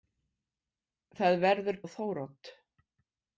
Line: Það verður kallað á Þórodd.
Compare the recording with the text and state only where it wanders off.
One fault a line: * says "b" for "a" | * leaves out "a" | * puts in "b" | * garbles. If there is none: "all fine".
* leaves out "kallað"